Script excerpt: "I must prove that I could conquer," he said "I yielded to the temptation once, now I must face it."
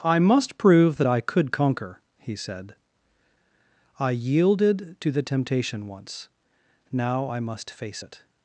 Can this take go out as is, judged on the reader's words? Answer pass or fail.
pass